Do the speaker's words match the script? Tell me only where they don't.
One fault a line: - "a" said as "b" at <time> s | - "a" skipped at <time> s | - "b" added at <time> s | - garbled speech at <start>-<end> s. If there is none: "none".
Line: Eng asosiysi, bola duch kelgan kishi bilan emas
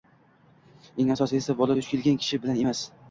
none